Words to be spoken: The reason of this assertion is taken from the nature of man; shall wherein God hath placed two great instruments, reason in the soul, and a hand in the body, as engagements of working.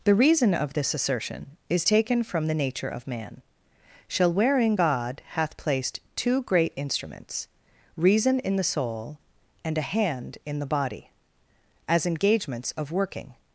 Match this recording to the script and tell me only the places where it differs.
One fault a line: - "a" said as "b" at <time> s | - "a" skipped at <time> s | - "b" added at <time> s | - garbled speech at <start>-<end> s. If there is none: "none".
none